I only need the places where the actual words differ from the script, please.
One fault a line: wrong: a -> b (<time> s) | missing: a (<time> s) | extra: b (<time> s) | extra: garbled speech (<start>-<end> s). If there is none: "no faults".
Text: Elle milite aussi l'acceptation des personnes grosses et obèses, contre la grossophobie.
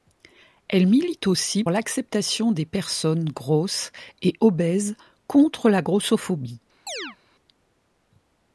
no faults